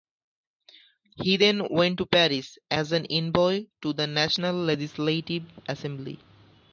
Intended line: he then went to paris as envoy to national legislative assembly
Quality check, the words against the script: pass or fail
fail